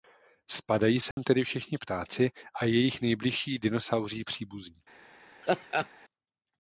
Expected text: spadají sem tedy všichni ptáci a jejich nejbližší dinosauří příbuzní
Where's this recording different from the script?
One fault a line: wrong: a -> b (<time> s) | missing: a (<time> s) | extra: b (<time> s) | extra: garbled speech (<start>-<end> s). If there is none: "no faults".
no faults